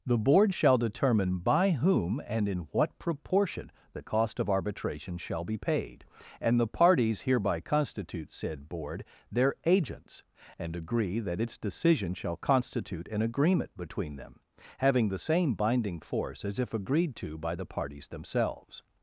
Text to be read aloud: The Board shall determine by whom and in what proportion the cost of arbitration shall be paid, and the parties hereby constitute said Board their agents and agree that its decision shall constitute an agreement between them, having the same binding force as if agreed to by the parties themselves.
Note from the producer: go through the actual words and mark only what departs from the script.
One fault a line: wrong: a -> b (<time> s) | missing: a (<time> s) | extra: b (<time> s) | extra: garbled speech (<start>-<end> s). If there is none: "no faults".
no faults